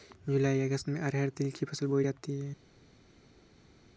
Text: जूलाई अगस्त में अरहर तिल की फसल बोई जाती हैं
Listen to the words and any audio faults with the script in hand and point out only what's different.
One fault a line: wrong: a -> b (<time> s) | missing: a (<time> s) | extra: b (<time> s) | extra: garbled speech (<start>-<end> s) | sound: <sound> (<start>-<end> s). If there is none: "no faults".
no faults